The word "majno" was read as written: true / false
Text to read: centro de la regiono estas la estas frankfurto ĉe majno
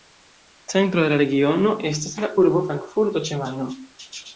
true